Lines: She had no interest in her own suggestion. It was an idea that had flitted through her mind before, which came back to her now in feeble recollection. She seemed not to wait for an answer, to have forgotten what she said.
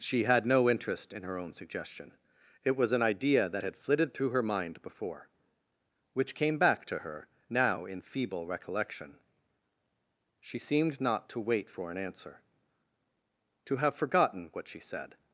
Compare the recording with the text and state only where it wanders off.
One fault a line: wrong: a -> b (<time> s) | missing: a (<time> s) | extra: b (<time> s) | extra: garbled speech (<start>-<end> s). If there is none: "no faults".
no faults